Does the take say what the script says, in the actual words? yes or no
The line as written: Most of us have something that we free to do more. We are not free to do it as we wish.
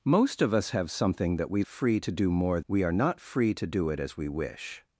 yes